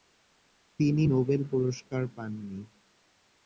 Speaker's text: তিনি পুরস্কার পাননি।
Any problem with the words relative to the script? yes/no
yes